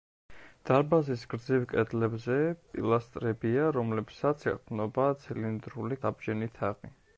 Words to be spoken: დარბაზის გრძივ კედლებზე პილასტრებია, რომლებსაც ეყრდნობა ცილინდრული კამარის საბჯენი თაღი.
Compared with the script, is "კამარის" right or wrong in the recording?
wrong